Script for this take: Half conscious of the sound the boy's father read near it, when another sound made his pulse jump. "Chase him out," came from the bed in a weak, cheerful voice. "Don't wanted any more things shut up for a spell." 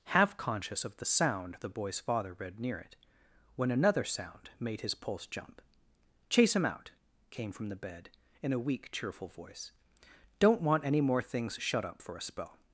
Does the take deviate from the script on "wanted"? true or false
true